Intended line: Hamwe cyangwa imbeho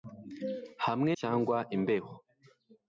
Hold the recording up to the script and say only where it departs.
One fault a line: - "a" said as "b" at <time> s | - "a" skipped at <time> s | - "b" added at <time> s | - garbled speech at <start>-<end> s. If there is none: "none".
none